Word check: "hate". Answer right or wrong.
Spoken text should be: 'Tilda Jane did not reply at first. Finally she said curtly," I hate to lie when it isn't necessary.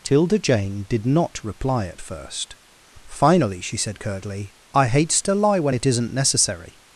wrong